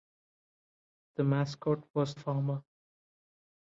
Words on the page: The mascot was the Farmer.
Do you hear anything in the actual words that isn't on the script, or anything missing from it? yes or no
yes